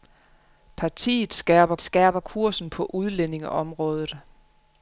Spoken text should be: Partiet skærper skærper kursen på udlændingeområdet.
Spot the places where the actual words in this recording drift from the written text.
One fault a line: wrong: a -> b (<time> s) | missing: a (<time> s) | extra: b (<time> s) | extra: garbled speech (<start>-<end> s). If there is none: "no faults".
no faults